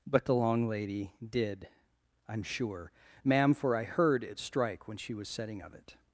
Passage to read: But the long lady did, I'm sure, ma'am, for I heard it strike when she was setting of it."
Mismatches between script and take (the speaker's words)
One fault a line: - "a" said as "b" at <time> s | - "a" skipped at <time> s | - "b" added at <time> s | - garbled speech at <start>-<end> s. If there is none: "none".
none